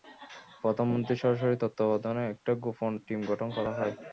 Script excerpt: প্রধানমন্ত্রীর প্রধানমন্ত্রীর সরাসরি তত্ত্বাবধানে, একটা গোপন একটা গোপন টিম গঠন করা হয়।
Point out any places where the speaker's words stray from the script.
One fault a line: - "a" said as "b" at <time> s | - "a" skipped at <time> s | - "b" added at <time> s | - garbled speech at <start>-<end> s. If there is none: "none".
- "প্রধানমন্ত্রীর" skipped at 1.2 s
- "একটা গোপন" skipped at 2.9 s